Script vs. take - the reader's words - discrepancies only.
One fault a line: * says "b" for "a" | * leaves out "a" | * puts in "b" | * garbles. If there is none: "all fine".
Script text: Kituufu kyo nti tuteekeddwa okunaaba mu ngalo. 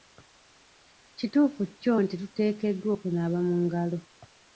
all fine